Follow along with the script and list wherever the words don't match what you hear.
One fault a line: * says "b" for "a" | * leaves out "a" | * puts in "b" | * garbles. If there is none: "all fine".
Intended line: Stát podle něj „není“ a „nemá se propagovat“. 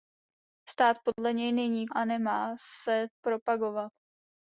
all fine